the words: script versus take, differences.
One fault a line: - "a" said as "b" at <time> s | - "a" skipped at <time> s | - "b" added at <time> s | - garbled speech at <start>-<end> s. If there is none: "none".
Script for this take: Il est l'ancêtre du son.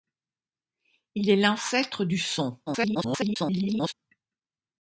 - garbled speech at 2.7-3.9 s